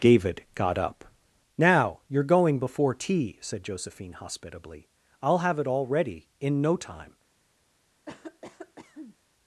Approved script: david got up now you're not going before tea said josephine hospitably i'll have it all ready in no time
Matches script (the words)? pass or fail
fail